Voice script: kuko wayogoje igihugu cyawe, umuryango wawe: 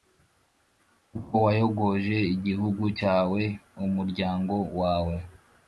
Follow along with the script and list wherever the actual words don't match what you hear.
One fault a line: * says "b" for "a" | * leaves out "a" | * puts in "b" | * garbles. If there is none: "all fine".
all fine